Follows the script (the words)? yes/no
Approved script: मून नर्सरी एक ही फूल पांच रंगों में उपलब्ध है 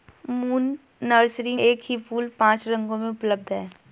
yes